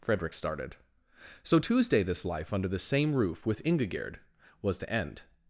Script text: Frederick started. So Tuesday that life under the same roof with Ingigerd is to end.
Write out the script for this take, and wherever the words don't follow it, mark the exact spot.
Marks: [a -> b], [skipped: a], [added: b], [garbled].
Frederick started. So Tuesday [that -> this] life under the same roof with Ingigerd [is -> was] to end.